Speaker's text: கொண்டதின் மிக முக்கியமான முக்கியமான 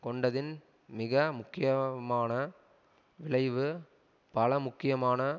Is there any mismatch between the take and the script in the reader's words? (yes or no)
yes